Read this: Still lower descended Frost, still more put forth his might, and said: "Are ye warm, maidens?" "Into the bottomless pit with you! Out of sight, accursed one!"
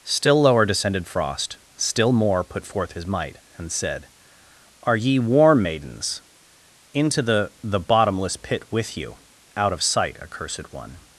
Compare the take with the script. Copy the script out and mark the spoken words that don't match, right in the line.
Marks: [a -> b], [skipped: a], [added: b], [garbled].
Still lower descended Frost, still more put forth his might, and said: "Are ye warm, maidens?" "Into the [added: the] bottomless pit with you! Out of sight, accursed one!"